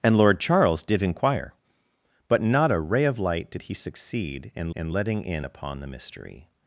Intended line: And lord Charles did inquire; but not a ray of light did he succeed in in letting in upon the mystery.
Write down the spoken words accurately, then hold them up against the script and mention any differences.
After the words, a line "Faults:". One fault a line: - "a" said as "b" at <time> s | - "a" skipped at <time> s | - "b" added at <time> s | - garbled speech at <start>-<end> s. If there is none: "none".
And lord Charles did inquire; but not a ray of light did he succeed in in letting in upon the mystery.
Faults:
none